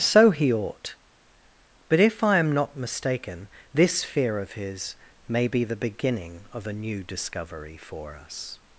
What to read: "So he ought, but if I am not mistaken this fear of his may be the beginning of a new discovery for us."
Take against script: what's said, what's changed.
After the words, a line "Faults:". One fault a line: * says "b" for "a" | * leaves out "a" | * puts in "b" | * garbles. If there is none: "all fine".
"So he ought, but if I am not mistaken this fear of his may be the beginning of a new discovery for us."
Faults:
all fine